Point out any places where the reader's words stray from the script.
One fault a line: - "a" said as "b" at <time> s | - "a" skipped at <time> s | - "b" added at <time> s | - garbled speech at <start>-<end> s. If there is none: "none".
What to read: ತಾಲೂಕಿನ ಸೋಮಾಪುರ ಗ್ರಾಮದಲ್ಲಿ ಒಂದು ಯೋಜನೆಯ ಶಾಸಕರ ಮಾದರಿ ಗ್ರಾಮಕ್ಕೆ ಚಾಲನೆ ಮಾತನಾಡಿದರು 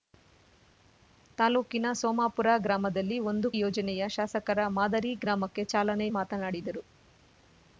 none